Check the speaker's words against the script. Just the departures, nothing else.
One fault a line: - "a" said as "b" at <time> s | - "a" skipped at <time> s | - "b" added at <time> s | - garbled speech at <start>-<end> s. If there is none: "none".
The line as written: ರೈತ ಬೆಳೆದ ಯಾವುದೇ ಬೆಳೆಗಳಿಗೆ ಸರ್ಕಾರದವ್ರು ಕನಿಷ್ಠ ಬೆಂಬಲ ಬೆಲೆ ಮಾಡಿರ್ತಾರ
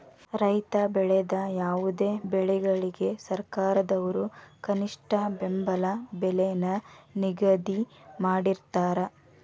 - "ನ ನಿಗದಿ" added at 6.6 s